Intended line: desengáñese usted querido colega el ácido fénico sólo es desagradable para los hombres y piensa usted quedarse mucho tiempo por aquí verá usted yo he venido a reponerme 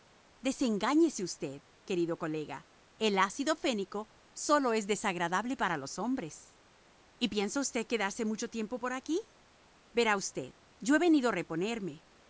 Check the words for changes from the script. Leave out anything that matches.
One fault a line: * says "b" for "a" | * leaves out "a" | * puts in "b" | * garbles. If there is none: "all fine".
all fine